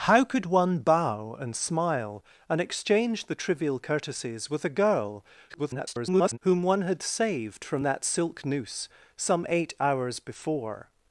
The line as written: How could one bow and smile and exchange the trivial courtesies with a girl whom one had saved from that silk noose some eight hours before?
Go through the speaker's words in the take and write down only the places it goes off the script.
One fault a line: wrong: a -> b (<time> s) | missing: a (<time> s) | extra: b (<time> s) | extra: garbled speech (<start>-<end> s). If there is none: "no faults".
extra: garbled speech (5.5-6.4 s)